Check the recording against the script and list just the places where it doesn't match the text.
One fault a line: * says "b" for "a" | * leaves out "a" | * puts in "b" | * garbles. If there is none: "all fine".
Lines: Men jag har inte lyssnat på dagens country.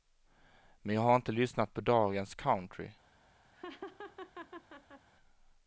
all fine